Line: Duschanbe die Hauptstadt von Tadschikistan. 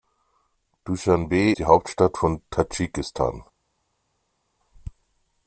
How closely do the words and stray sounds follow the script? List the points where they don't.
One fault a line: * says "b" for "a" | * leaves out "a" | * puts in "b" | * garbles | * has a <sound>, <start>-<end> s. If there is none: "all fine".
all fine